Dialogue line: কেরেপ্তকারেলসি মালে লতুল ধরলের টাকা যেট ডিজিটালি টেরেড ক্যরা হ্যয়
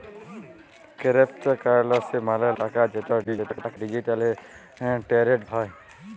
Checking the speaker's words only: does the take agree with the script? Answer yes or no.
no